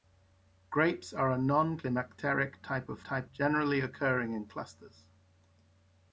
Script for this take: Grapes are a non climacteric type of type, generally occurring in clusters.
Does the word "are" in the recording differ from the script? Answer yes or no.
no